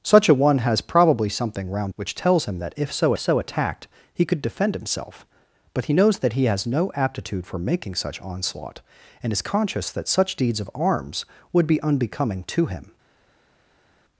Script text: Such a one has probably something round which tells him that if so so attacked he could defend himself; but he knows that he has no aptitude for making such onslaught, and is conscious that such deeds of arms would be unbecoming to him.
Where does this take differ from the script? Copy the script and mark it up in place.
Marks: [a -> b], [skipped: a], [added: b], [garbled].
Such a one has probably something round which tells him that if so so attacked he could defend himself; but he knows that he has no aptitude for making such onslaught, and is conscious that such deeds of arms would be unbecoming to him.